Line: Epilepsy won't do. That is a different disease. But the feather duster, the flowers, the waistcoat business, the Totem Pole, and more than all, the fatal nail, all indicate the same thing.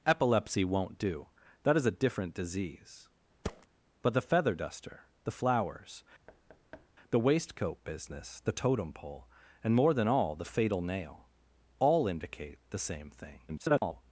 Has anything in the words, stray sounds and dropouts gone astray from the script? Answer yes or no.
yes